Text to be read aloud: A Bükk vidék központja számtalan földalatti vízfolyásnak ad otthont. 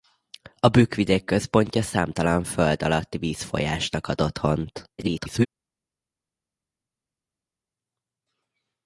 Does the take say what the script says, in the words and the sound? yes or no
no